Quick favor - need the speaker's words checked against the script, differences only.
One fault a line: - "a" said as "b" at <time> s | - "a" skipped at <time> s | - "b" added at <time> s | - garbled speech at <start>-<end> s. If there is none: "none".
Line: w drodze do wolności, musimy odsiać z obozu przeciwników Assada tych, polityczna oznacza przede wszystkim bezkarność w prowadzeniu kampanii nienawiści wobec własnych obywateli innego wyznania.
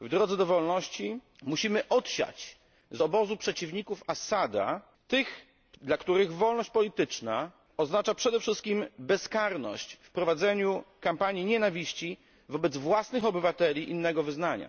- "dla których wolność" added at 5.8 s